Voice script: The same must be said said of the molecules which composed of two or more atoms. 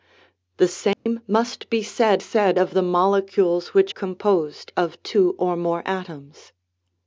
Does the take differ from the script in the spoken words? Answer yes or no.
no